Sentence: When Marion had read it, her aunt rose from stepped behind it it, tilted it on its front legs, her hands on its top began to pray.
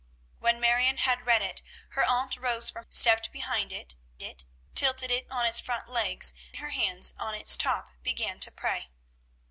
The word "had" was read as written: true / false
true